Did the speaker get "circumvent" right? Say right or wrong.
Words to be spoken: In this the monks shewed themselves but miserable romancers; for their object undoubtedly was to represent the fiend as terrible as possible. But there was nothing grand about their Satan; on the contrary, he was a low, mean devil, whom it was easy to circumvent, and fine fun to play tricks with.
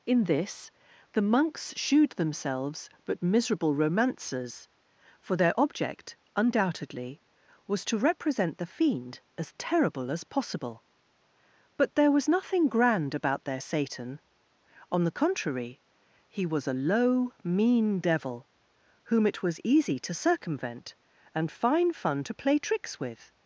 right